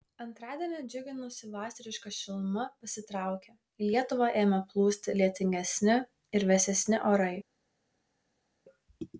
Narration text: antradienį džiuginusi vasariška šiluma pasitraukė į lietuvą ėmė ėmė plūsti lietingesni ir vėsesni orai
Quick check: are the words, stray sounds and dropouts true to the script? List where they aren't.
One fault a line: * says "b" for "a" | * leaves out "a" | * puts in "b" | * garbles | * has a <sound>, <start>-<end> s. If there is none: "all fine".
* leaves out "ėmė"